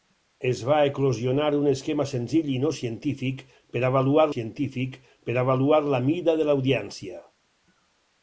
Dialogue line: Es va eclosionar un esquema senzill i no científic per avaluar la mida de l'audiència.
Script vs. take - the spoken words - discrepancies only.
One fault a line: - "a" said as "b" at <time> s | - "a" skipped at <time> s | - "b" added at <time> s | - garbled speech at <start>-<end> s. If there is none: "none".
- "científic per avaluar" added at 4.3 s